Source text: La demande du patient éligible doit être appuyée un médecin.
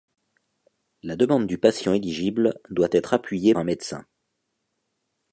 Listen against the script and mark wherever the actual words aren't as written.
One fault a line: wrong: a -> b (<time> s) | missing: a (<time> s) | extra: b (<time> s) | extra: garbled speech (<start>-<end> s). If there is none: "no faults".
no faults